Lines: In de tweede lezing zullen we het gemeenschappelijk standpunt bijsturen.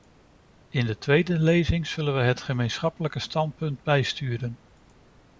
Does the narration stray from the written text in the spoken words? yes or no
no